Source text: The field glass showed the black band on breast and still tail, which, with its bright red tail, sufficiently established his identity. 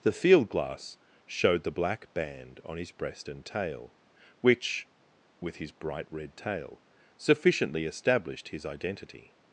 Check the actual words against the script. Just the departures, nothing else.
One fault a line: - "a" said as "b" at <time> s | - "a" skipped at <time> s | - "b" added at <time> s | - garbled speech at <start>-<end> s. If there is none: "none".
- "his" added at 2.8 s
- "still" skipped at 3.4 s
- "its" said as "his" at 5.6 s